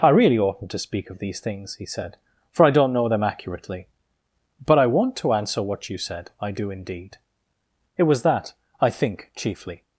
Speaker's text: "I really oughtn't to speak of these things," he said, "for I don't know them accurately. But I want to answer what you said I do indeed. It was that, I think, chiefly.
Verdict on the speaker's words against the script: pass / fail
pass